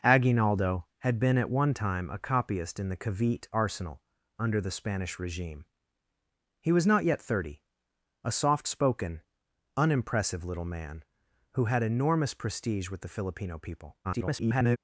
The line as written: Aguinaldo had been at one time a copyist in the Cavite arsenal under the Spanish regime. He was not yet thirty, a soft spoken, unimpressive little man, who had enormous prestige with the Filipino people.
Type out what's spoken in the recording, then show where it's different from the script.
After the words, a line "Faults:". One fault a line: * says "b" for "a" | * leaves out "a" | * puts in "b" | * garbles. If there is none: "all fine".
Aguinaldo had been at one time a copyist in the Cavite arsenal under the Spanish regime. He was not yet thirty, a soft spoken, unimpressive little man, who had enormous prestige with the Filipino people. [garbled]
Faults:
* garbles